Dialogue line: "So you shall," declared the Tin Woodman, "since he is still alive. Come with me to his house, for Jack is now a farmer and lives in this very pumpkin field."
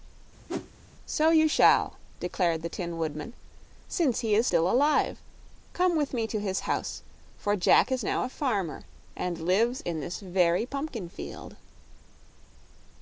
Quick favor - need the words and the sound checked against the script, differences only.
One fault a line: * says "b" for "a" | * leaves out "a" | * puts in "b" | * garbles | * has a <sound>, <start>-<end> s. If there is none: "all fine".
* has a whoosh, 0.5-0.7 s